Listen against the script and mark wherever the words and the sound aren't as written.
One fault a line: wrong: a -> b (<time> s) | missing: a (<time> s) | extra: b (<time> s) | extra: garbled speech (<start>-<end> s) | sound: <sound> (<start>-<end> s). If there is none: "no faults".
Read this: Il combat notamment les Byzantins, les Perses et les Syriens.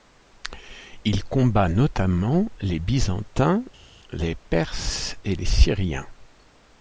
no faults